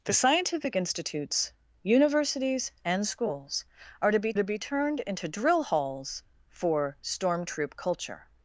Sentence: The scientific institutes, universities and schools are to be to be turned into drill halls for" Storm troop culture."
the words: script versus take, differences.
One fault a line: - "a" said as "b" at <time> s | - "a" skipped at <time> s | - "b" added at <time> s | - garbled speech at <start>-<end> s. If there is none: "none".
none